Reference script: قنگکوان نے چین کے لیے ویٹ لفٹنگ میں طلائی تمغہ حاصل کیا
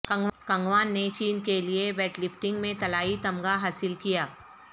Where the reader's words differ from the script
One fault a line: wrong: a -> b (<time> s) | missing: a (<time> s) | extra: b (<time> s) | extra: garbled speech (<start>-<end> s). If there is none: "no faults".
no faults